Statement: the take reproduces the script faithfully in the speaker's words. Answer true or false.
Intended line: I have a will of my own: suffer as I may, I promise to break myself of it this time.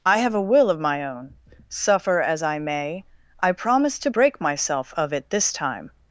true